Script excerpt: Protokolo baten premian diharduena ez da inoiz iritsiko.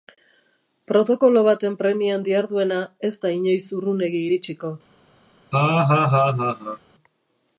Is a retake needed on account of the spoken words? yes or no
yes